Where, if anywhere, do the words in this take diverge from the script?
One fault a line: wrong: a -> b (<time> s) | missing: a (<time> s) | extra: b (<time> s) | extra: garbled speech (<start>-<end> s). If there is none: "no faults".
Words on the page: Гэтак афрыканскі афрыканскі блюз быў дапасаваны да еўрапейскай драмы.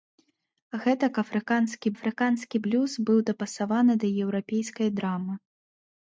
no faults